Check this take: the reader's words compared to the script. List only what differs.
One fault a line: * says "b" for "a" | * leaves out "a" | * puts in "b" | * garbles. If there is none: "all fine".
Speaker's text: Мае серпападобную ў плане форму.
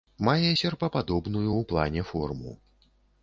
all fine